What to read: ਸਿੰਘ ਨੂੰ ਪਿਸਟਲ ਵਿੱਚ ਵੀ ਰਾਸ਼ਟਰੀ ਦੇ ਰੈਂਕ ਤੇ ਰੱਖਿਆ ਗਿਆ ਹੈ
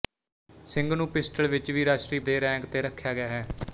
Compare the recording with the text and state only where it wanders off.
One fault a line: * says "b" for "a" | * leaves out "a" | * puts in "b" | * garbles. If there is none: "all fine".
all fine